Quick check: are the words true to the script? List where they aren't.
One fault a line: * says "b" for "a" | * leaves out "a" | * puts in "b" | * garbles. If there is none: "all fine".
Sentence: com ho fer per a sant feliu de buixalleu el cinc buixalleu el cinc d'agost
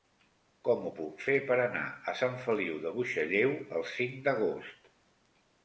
* puts in "puc"
* puts in "anar"
* leaves out "buixalleu el cinc"